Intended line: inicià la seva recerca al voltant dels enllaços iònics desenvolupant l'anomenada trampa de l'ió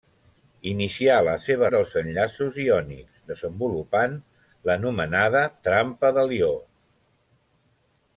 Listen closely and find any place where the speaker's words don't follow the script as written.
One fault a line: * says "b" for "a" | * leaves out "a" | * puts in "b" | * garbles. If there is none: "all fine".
* leaves out "recerca al voltant"